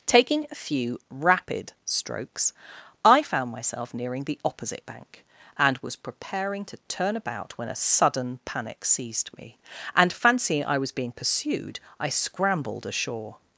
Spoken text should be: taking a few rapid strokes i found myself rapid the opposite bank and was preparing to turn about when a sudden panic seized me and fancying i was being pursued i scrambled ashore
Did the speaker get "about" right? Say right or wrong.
right